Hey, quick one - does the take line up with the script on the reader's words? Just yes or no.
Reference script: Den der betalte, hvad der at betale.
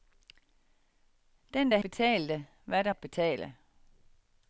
yes